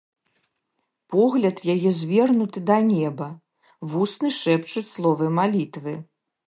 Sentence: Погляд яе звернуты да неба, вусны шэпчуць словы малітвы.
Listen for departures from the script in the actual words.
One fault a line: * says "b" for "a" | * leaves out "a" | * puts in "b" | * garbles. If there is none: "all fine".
all fine